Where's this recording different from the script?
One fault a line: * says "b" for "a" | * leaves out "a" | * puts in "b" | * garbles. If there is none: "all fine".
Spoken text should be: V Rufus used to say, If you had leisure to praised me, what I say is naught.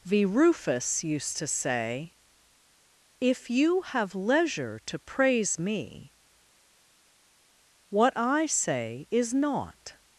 * says "have" for "had"
* says "praise" for "praised"